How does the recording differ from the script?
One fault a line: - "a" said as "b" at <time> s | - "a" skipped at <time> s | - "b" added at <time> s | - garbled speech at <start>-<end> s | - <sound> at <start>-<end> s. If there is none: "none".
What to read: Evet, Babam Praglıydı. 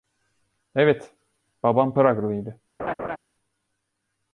- laugh at 2.8-3.2 s